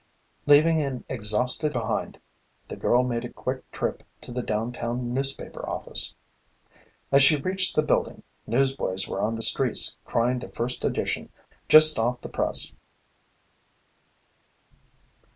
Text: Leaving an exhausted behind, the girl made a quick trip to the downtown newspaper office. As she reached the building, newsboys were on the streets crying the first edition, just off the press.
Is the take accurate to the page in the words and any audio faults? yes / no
yes